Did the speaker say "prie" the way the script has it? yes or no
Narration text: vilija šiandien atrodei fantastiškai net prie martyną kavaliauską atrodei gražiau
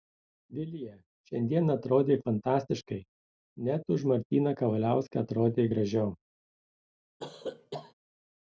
no